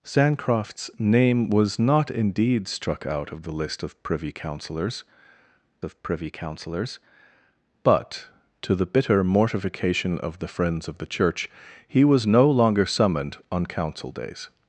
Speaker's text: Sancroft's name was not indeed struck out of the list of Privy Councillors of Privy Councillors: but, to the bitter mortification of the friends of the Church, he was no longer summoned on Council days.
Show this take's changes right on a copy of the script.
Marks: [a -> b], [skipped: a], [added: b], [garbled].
Sancroft's name was not indeed struck out of the list of Privy Councillors of Privy Councillors: but, to the bitter mortification of the friends of the Church, he was no longer summoned on Council days.